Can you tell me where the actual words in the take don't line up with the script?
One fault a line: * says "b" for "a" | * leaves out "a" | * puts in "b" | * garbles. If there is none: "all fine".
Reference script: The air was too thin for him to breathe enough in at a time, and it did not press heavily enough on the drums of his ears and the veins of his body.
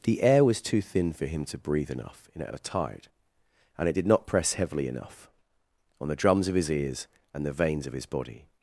* says "tide" for "time"